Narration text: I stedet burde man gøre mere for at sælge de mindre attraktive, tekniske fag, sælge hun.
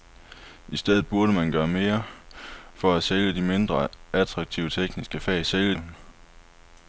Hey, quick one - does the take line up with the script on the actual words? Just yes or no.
yes